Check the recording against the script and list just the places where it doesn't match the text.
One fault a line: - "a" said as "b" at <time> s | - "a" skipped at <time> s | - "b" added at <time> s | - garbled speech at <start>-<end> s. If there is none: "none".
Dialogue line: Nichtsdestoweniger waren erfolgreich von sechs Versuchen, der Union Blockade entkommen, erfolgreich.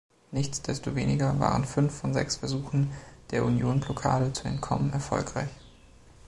- "erfolgreich" said as "fünf" at 1.6 s
- "zu" added at 4.3 s